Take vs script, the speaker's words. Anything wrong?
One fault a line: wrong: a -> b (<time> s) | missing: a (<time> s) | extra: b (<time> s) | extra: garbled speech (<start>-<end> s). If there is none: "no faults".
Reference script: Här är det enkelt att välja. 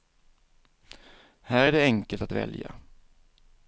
no faults